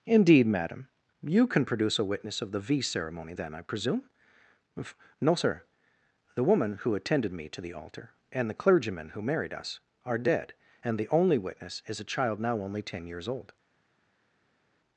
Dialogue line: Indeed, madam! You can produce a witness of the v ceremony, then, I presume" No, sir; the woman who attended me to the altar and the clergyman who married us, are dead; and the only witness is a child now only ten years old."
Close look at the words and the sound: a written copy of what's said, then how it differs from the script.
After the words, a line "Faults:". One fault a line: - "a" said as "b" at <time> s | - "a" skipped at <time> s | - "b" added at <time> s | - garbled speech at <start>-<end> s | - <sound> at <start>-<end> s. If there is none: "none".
Indeed, madam! You can produce a witness of the v ceremony, then, I presume" No, sir; the woman who attended me to the altar and the clergyman who married us, are dead; and the only witness is a child now only ten years old."
Faults:
none